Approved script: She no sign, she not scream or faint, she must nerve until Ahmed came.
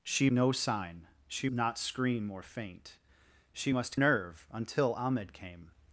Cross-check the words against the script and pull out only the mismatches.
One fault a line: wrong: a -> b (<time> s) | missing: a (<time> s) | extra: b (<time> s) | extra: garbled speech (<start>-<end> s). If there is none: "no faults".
no faults